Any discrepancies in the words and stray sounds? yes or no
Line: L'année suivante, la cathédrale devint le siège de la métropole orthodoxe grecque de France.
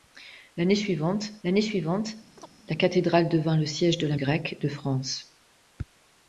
yes